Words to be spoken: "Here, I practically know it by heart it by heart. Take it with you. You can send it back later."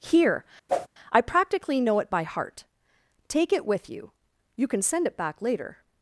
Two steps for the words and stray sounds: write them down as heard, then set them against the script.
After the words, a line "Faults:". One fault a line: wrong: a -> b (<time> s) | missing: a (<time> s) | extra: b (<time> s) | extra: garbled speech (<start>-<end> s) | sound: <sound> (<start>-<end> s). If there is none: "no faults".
"Here, I practically know it by heart. Take it with you. You can send it back later."
Faults:
sound: whoosh (0.7-0.9 s)
missing: it by heart (2.6 s)